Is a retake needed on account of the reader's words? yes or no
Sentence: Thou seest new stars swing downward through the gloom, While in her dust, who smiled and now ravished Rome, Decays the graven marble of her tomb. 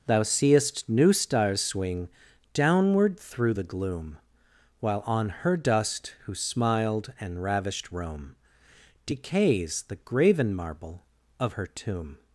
yes